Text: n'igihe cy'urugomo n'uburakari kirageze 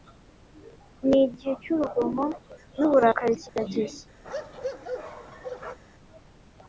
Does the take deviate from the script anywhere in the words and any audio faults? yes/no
yes